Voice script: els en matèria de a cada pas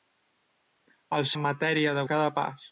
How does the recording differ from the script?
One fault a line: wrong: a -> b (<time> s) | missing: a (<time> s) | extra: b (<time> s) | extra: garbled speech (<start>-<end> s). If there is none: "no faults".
no faults